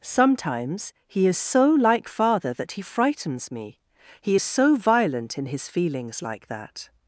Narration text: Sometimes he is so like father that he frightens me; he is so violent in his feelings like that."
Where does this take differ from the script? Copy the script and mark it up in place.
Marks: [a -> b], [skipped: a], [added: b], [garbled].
Sometimes he is so like father that he frightens me; he is so violent in his feelings like that."